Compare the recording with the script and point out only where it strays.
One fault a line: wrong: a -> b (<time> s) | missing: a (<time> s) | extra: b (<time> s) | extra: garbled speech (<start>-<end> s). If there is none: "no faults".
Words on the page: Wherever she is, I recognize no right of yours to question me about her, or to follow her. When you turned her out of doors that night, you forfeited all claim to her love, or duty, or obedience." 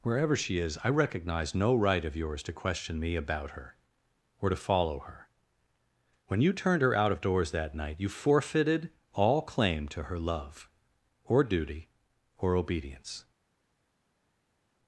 no faults